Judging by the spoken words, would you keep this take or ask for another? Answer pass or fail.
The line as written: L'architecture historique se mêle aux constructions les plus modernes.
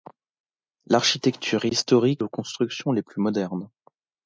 fail